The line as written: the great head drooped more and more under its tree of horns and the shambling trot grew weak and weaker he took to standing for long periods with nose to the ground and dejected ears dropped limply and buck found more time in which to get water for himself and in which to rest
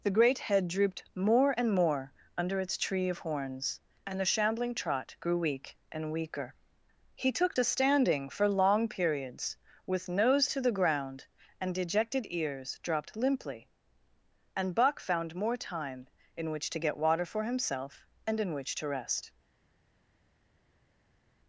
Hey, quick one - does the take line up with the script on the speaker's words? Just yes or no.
yes